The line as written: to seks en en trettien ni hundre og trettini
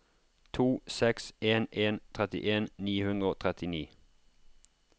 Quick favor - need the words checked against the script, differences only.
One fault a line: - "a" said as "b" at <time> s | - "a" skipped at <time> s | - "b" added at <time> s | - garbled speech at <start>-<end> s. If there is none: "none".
none